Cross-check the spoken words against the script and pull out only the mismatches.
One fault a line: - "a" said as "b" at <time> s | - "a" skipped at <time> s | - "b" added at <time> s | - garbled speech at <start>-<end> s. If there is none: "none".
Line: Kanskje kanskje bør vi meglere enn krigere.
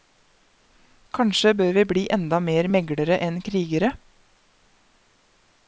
- "kanskje" skipped at 1.5 s
- "bli enda mer" added at 1.9 s